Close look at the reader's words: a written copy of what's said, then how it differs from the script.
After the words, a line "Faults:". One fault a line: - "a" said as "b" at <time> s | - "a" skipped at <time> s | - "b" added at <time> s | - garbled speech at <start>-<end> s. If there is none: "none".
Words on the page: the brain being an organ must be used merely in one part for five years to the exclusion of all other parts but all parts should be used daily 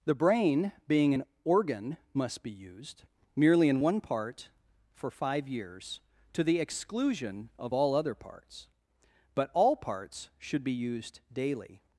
the brain being an organ must be used merely in one part for five years to the exclusion of all other parts but all parts should be used daily
Faults:
none